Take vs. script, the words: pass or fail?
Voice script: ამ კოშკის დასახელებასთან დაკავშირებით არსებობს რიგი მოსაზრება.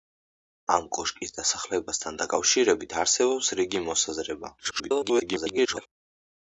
fail